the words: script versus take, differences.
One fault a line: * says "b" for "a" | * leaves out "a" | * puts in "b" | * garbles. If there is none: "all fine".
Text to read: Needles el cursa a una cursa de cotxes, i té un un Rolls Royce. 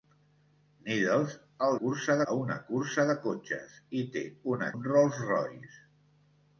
all fine